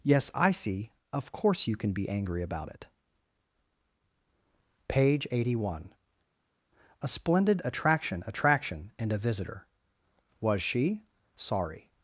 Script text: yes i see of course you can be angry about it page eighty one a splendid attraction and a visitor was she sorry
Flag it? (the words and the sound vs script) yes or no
yes